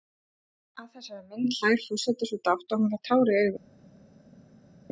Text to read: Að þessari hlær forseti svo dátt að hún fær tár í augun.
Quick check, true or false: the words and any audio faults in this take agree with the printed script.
false